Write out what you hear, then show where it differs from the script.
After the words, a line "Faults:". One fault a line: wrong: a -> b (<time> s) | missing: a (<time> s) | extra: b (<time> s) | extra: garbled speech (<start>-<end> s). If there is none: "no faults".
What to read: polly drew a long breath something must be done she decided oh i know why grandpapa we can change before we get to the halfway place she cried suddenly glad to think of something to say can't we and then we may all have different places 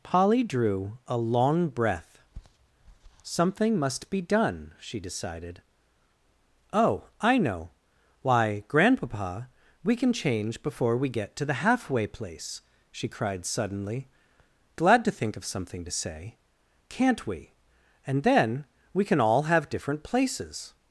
polly drew a long breath something must be done she decided oh i know why grandpapa we can change before we get to the halfway place she cried suddenly glad to think of something to say can't we and then we can all have different places
Faults:
wrong: may -> can (19.0 s)